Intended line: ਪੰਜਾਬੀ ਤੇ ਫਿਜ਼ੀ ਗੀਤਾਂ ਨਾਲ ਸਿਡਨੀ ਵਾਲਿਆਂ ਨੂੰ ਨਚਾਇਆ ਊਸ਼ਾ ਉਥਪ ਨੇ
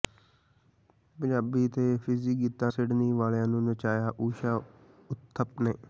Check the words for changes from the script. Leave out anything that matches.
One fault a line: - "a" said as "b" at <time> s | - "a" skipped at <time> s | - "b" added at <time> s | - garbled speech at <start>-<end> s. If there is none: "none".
- "ਨਾਲ" skipped at 2.7 s